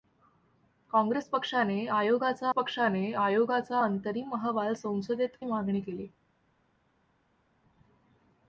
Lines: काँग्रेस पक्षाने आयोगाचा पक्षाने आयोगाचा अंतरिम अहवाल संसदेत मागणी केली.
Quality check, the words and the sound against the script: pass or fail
pass